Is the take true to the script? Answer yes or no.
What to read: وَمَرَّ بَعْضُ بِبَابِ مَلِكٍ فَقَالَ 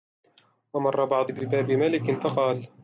yes